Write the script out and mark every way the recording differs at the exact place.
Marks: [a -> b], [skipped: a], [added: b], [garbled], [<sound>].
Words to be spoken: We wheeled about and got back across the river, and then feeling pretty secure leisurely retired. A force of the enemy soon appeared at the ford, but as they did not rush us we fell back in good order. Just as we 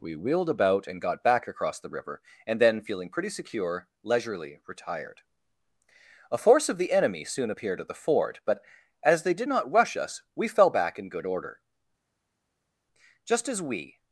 We wheeled about and got back across the river, and then feeling pretty secure leisurely retired. A force of the enemy soon appeared at the ford, but as they did not rush us we fell back in good order. Just as we